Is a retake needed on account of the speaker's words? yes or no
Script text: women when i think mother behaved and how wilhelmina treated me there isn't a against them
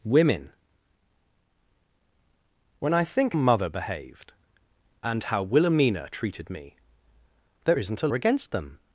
no